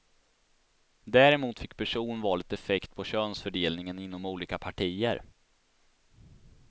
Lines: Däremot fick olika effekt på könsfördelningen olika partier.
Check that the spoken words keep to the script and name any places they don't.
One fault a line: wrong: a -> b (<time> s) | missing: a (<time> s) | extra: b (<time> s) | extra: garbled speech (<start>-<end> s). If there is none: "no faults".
wrong: olika -> personvalet (1.8 s)
extra: inom (4.0 s)